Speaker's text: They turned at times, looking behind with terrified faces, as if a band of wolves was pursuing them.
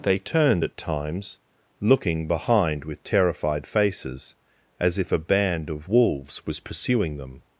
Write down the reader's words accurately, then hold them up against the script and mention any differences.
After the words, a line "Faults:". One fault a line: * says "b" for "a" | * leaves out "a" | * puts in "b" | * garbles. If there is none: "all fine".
They turned at times, looking behind with terrified faces, as if a band of wolves was pursuing them.
Faults:
all fine